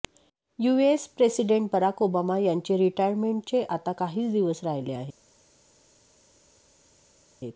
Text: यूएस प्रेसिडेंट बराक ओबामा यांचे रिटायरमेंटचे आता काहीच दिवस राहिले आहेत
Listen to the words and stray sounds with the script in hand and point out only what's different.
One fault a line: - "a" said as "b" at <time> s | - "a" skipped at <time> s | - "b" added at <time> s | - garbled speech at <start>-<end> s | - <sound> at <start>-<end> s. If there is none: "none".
none